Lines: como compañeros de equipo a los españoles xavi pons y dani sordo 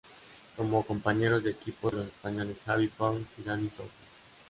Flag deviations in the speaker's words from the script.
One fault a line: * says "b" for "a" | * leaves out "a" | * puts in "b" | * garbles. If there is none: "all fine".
all fine